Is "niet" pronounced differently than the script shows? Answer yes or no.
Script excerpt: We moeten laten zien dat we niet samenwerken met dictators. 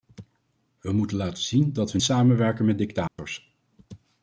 yes